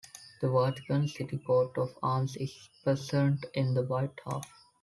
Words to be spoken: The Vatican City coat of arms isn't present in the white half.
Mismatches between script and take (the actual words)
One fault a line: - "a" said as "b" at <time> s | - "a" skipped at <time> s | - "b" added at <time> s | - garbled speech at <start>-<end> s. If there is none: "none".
- "isn't" said as "is" at 2.4 s